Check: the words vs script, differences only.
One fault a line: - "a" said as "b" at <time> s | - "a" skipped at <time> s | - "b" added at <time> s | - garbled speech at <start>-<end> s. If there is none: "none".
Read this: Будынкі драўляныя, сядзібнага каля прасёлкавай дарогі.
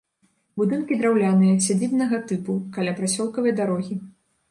- "тыпу" added at 2.3 s